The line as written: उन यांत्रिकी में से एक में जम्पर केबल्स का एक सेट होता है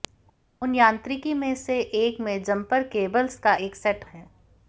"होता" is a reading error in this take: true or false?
true